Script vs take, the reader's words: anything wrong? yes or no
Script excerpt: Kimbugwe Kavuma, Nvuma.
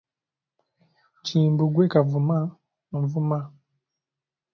no